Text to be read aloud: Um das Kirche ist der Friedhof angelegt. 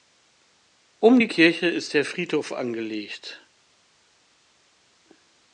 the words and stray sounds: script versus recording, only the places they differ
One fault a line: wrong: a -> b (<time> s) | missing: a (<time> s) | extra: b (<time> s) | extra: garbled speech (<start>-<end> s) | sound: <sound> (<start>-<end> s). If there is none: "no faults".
wrong: das -> die (1.2 s)